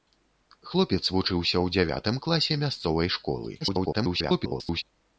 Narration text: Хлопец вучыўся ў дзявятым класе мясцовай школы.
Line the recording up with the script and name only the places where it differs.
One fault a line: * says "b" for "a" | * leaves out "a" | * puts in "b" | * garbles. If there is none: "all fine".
* garbles